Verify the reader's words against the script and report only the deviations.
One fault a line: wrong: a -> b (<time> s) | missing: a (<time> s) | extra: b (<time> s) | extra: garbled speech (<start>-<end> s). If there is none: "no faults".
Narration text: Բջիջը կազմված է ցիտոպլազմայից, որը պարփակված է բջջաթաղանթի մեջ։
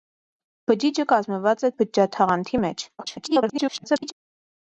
missing: ցիտոպլազմայից որը պարփակված (1.7 s)
extra: garbled speech (3.0-4.1 s)